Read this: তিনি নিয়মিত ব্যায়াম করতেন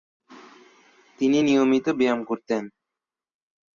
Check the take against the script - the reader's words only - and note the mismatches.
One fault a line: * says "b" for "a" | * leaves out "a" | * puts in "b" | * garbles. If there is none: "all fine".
all fine